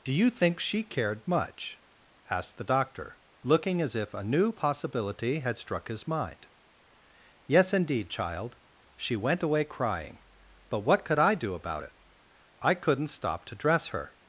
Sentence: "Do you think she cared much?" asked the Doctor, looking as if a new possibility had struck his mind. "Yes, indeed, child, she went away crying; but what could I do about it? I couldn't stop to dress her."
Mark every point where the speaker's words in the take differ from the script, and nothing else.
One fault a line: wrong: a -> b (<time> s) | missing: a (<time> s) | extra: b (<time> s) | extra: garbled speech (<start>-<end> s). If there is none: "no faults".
no faults